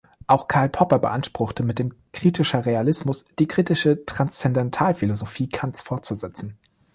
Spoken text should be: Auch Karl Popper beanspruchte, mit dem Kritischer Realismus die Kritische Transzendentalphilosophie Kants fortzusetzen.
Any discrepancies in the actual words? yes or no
no